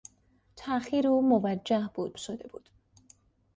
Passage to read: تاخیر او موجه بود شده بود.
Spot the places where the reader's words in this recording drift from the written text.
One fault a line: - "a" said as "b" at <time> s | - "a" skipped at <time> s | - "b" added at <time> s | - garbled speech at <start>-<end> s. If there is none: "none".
none